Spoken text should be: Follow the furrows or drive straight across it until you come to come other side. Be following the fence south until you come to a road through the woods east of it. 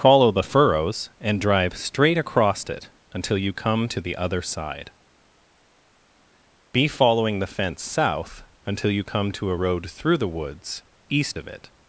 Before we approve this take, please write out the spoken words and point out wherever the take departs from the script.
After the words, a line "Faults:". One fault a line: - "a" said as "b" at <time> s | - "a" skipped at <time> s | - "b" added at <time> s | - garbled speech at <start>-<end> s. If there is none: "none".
Follow the furrows and drive straight across it until you come to the other side. Be following the fence south until you come to a road through the woods east of it.
Faults:
- "or" said as "and" at 1.2 s
- "come" said as "the" at 4.0 s